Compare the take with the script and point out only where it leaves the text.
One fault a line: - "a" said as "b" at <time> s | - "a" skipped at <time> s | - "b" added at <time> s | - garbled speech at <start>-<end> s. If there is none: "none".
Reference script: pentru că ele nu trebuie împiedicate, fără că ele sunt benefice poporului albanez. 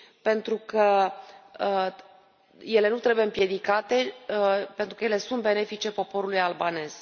- "fără" said as "pentru" at 4.8 s